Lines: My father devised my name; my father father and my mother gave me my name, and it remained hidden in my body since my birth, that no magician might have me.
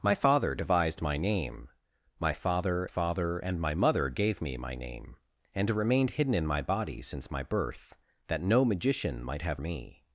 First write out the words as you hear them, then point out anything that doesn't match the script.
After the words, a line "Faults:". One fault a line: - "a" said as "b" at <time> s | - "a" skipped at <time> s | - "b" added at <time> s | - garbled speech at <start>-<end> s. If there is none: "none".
My father devised my name; my father father and my mother gave me my name, and it remained hidden in my body since my birth, that no magician might have me.
Faults:
none